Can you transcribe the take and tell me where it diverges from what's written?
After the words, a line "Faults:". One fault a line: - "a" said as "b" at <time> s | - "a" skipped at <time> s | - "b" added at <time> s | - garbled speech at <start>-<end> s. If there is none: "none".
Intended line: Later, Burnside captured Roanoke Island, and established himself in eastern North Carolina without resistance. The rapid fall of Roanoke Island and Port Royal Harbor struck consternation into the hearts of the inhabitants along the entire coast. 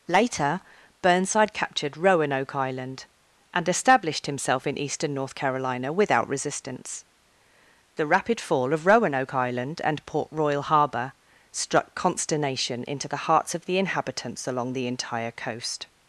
Later, Burnside captured Roanoke Island, and established himself in eastern North Carolina without resistance. The rapid fall of Roanoke Island and Port Royal Harbor struck consternation into the hearts of the inhabitants along the entire coast.
Faults:
none